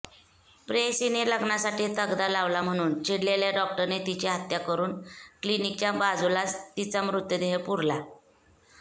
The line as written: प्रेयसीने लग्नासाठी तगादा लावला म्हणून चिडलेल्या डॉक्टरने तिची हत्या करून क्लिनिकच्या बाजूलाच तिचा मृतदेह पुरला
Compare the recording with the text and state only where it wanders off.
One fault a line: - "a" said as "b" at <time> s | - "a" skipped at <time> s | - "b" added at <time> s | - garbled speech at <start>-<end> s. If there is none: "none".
none